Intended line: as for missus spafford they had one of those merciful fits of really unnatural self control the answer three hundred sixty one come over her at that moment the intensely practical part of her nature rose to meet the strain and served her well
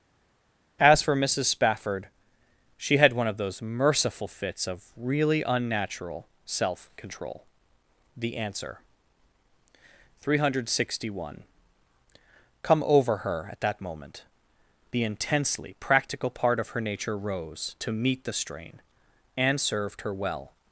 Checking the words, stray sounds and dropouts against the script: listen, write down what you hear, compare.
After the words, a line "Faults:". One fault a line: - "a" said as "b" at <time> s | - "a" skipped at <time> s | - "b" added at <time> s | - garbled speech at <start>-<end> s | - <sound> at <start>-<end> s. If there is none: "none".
as for missus spafford she had one of those merciful fits of really unnatural self control the answer three hundred sixty one come over her at that moment the intensely practical part of her nature rose to meet the strain and served her well
Faults:
- "they" said as "she" at 2.8 s